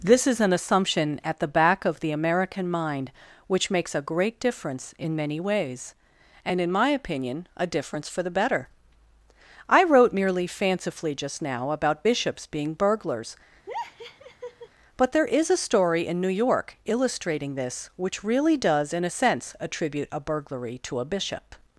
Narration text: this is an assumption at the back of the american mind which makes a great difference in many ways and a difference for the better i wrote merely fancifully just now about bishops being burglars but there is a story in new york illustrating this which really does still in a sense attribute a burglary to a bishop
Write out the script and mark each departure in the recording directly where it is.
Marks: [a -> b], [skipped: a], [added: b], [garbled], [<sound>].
this is an assumption at the back of the american mind which makes a great difference in many ways and [added: in my opinion] a difference for the better i wrote merely fancifully just now about bishops being burglars [laugh] but there is a story in new york illustrating this which really does [skipped: still] in a sense attribute a burglary to a bishop